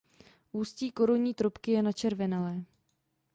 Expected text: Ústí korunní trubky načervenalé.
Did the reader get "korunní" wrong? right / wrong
right